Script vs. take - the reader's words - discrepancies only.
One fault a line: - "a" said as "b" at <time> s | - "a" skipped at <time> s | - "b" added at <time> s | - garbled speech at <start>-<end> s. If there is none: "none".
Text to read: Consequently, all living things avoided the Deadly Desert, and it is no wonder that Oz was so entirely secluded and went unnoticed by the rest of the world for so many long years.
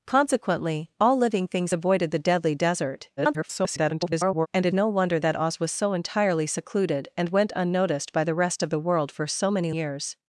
- garbled speech at 3.2-4.5 s
- "is" skipped at 4.7 s
- "long" skipped at 9.7 s